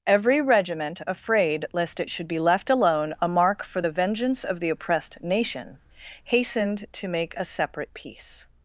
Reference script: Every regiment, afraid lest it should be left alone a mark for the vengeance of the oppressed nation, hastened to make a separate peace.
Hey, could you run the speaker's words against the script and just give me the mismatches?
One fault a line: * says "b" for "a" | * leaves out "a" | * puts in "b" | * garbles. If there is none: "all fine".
all fine